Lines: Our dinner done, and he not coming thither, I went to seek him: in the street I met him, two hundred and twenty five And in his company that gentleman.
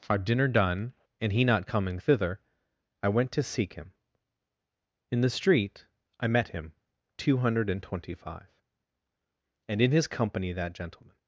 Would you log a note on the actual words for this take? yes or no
no